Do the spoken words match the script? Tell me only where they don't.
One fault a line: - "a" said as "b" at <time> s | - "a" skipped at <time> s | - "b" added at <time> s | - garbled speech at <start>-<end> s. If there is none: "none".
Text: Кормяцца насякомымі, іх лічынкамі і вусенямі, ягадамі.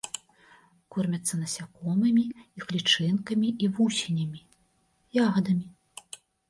none